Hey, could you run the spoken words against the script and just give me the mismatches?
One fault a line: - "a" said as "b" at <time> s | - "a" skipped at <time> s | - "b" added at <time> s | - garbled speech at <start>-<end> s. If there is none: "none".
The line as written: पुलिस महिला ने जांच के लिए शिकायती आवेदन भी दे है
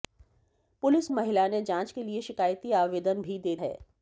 none